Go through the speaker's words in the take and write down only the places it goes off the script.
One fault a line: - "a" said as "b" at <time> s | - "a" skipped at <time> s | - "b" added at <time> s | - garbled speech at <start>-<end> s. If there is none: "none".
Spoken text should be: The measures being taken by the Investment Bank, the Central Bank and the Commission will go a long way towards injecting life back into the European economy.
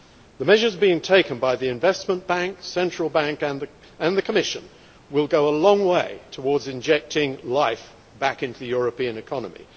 none